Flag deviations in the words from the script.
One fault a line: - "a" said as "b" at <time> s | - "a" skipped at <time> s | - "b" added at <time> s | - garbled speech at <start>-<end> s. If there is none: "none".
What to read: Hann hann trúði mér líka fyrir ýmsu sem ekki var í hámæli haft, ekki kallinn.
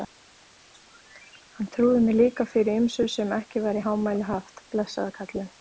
- "hann" skipped at 1.7 s
- "ekki" said as "blessaður" at 4.8 s